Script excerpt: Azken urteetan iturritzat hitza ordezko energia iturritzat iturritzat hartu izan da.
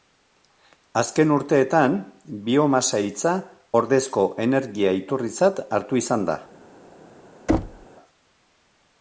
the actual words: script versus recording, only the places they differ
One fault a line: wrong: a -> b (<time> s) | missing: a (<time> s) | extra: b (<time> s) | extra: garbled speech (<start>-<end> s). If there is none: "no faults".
wrong: iturritzat -> biomasa (2.5 s)
missing: iturritzat (5.6 s)